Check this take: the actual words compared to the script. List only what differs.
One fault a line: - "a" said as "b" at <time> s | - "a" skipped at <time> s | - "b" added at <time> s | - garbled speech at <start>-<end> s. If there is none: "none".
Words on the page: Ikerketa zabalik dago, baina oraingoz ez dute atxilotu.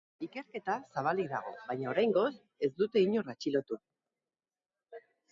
- "inor" added at 3.1 s